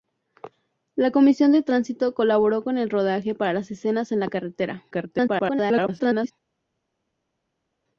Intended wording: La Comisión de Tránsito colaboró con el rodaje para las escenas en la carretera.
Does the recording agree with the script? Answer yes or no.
no